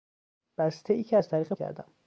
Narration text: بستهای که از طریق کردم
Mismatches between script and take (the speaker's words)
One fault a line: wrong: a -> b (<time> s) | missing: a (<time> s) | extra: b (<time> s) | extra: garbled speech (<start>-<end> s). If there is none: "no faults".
no faults